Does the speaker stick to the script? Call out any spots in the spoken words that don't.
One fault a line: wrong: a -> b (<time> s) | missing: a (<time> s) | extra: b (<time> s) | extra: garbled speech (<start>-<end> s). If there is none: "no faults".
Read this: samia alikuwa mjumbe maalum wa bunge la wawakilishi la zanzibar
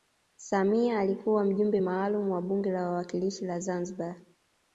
no faults